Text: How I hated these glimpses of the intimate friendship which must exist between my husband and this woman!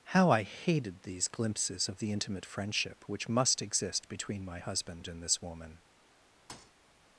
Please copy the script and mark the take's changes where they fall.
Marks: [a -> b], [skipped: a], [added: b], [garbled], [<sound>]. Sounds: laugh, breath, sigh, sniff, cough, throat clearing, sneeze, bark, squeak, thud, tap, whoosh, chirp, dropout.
How I hated these glimpses of the intimate friendship which must exist between my husband and this woman! [thud]